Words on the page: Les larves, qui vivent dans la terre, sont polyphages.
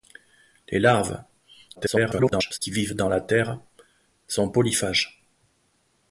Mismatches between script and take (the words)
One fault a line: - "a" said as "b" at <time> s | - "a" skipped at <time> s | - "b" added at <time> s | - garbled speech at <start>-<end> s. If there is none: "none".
- garbled speech at 1.8-2.6 s